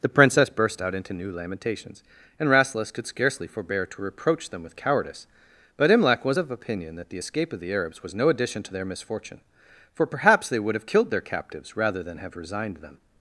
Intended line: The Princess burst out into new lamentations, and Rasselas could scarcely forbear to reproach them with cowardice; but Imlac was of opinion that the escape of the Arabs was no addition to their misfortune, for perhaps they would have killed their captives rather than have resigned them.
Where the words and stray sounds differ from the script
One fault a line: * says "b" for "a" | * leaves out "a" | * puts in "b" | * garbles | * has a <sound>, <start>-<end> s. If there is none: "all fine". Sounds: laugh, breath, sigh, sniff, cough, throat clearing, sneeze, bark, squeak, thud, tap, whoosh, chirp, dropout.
all fine